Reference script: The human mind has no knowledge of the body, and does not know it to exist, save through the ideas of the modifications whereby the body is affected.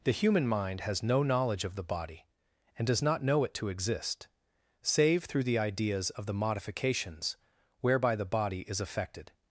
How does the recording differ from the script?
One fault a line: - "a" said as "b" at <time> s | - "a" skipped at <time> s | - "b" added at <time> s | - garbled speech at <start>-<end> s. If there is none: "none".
none